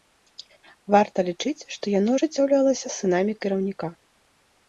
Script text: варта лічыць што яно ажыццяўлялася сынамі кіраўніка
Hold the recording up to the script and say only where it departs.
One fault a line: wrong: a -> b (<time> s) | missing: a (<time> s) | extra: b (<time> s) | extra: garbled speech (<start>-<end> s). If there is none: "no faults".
no faults